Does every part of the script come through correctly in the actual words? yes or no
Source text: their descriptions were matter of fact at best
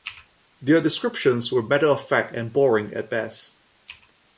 no